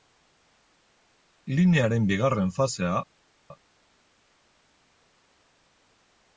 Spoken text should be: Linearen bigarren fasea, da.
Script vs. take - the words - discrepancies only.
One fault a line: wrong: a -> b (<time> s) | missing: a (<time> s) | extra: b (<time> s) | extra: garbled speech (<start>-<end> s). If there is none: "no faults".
no faults